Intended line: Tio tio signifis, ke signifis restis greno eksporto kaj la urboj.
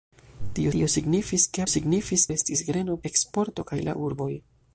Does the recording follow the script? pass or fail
pass